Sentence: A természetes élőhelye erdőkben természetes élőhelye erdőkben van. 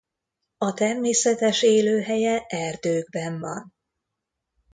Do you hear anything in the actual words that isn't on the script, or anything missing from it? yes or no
yes